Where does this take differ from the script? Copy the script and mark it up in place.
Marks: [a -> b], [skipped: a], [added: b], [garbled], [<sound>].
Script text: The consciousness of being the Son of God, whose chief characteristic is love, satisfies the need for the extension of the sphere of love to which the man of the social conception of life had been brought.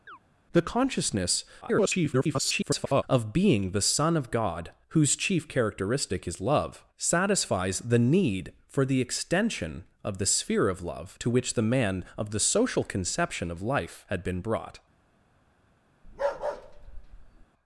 [chirp] The consciousness [garbled] of being the Son of God, whose chief characteristic is love, satisfies the need for the extension of the sphere of love to which the man of the social conception of life had been brought. [bark]